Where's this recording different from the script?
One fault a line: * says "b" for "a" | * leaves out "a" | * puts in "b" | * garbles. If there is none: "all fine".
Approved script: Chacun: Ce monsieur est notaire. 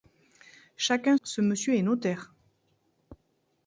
all fine